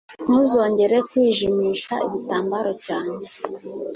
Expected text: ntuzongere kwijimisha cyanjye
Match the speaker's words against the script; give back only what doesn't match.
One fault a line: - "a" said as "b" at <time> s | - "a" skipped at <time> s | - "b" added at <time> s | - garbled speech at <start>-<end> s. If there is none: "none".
- "igitambaro" added at 2.1 s